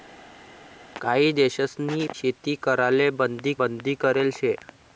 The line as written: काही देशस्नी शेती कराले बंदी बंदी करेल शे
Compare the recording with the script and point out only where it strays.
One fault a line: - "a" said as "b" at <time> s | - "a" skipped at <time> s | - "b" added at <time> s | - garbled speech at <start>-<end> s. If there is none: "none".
none